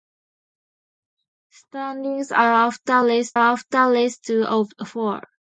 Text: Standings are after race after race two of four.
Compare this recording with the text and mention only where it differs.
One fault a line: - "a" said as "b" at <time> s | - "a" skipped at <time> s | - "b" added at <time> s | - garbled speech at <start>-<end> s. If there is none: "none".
none